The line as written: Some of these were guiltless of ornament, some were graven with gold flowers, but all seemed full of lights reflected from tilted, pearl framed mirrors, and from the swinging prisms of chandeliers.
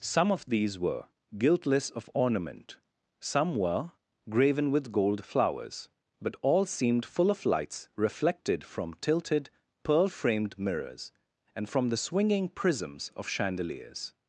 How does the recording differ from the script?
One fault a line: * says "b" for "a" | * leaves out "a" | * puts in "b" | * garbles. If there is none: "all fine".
all fine